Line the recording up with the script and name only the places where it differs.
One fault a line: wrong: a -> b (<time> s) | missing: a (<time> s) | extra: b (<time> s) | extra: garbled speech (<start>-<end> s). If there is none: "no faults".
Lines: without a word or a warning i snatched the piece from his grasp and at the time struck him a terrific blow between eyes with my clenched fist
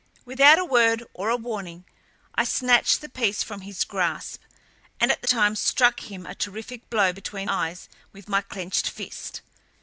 no faults